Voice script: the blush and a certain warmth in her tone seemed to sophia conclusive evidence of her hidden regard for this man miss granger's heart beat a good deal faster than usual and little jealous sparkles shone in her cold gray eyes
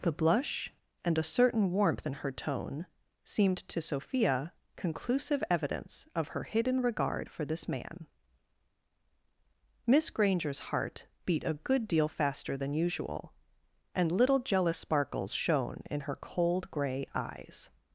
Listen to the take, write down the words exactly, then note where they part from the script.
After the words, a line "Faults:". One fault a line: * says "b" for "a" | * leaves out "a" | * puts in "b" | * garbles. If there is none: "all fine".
the blush and a certain warmth in her tone seemed to sophia conclusive evidence of her hidden regard for this man miss granger's heart beat a good deal faster than usual and little jealous sparkles shone in her cold gray eyes
Faults:
all fine